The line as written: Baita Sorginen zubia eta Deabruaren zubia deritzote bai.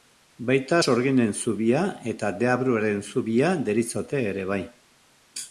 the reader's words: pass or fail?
fail